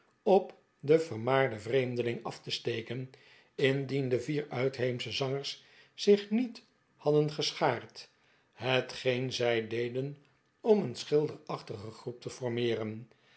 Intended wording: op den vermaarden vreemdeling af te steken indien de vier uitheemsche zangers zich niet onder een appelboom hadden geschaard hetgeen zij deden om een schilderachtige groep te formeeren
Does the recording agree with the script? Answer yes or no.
no